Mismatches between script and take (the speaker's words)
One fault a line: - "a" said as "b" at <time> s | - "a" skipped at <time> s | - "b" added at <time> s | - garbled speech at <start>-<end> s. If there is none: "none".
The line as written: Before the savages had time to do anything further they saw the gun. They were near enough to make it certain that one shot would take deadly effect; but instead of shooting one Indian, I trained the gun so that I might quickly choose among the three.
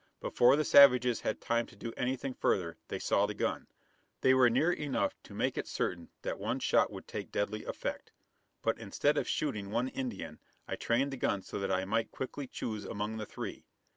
none